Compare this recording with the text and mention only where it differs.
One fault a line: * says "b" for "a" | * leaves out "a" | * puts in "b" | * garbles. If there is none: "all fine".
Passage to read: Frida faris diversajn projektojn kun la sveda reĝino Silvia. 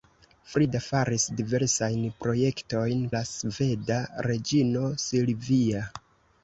* leaves out "kun"